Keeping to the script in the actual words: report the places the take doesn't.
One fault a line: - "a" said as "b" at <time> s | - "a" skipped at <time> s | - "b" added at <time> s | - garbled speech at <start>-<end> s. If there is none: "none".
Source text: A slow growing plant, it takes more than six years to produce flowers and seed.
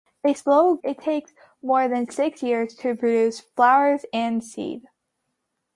- "growing plant" skipped at 0.8 s